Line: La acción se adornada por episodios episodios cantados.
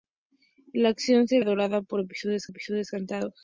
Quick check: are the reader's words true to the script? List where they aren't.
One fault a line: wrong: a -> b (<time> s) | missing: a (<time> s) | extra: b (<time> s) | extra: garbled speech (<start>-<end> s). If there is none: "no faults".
no faults